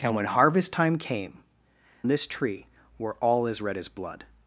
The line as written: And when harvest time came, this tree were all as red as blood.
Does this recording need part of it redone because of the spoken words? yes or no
no